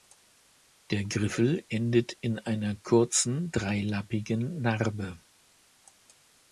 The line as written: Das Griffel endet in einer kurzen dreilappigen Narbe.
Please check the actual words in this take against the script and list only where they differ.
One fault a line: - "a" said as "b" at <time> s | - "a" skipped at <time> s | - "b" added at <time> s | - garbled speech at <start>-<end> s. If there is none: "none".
- "Das" said as "Der" at 0.9 s